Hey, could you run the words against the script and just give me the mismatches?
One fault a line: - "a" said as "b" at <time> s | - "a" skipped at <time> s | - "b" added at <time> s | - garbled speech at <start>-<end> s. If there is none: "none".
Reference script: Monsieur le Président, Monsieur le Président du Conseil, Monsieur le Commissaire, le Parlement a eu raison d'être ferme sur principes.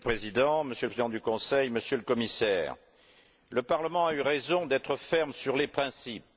- "les" added at 5.6 s